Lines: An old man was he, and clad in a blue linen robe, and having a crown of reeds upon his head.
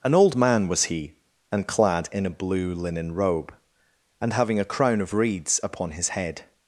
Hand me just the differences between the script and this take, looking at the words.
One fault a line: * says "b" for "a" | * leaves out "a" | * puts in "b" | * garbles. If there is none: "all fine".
all fine